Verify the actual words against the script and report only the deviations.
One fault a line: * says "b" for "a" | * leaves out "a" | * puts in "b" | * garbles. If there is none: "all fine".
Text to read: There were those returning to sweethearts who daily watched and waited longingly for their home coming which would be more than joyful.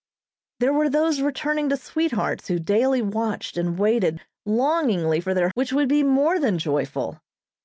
* leaves out "home coming"